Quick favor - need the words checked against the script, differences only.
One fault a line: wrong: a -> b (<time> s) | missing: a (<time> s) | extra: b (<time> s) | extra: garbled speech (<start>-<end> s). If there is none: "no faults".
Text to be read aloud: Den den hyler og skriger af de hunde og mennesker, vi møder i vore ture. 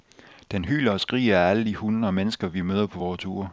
missing: den (0.7 s)
extra: alle (1.5 s)
wrong: i -> på (2.9 s)